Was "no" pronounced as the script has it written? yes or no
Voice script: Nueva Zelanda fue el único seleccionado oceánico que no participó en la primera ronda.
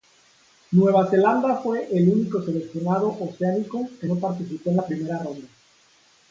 yes